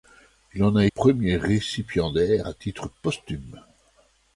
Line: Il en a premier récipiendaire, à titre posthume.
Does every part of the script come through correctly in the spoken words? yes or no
yes